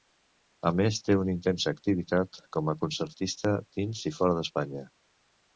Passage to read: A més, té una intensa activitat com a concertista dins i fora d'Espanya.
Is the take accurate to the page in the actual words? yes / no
yes